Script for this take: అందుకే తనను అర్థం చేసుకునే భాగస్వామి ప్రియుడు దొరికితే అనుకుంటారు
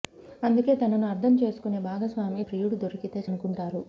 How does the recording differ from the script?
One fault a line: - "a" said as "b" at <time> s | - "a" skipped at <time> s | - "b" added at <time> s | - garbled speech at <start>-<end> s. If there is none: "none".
none